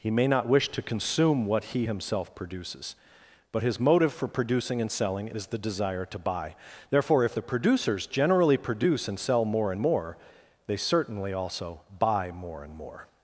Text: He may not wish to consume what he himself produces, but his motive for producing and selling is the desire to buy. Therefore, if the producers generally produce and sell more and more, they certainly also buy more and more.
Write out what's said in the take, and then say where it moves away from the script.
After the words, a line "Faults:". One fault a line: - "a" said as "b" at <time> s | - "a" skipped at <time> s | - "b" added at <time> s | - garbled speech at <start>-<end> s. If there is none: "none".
He may not wish to consume what he himself produces, but his motive for producing and selling is the desire to buy. Therefore, if the producers generally produce and sell more and more, they certainly also buy more and more.
Faults:
none